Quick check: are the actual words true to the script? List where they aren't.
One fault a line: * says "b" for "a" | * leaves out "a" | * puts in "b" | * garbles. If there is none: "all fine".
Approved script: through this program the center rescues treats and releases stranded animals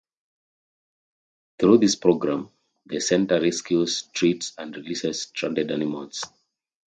all fine